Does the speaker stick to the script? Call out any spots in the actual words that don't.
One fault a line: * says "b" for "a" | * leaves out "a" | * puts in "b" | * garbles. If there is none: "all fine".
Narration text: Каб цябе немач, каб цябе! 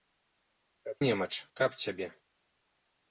* leaves out "цябе"